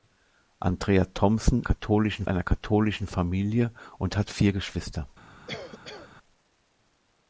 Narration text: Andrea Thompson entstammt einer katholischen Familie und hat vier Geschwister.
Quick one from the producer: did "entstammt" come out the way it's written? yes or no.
no